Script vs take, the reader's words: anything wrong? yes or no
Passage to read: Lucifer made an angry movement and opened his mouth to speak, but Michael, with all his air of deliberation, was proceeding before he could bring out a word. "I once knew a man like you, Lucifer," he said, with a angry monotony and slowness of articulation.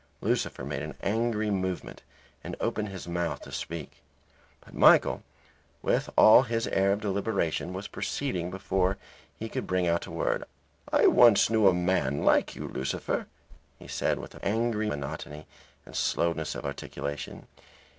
no